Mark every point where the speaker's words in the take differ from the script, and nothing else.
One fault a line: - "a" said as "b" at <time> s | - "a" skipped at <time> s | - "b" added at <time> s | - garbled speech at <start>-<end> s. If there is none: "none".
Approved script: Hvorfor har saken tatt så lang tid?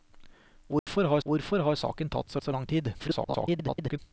- "hvorfor har" added at 1.3 s
- "så" added at 2.4 s
- garbled speech at 3.0-4.0 s